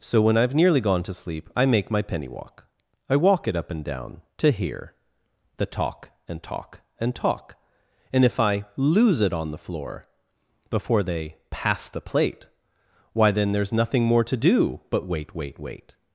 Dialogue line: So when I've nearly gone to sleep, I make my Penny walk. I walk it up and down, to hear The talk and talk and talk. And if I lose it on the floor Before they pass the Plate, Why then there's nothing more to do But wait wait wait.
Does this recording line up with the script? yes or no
yes